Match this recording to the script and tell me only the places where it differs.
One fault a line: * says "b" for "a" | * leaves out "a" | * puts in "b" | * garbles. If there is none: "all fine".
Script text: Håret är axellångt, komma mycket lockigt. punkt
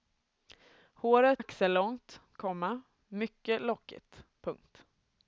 * leaves out "är"